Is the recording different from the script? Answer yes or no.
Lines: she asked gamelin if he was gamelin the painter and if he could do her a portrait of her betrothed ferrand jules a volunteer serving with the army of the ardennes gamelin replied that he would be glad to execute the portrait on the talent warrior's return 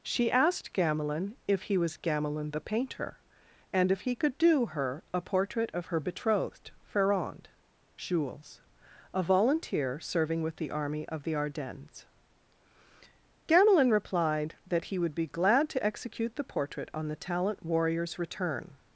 no